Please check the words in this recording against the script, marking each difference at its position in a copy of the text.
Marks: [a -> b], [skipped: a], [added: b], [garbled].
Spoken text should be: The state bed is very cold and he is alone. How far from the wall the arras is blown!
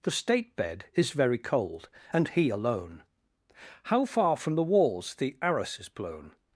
The state bed is very cold and he [skipped: is] alone. How far from the [wall -> walls] the arras is blown!